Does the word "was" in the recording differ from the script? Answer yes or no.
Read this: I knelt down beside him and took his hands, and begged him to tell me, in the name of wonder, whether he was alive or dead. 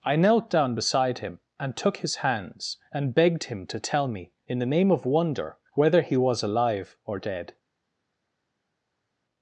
no